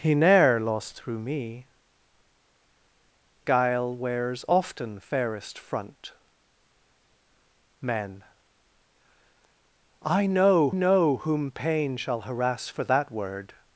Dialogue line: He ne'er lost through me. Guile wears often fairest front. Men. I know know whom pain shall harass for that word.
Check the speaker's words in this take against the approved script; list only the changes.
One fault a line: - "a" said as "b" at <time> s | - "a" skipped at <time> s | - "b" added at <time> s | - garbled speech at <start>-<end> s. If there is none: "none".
none